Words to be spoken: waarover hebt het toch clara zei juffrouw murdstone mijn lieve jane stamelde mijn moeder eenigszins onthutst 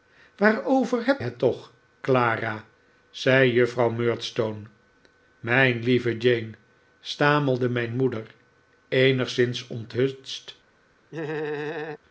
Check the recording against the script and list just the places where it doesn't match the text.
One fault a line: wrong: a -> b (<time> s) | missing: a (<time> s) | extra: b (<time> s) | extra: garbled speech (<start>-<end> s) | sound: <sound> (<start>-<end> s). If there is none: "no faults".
sound: laugh (11.1-12.0 s)